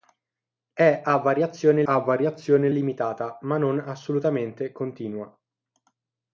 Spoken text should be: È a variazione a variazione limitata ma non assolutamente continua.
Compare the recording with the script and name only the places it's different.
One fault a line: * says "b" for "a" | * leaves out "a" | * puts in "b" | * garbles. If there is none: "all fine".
all fine